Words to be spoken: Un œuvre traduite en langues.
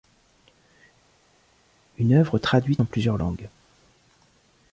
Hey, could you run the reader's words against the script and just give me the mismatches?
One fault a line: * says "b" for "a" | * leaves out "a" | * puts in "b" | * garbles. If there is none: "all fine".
* says "Une" for "Un"
* puts in "plusieurs"